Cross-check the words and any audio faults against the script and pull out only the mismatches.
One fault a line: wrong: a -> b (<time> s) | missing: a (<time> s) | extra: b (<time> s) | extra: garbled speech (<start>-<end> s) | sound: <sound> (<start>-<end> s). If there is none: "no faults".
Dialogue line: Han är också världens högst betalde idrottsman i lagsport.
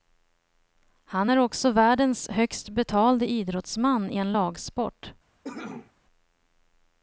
extra: en (4.2 s)
sound: cough (5.4-5.9 s)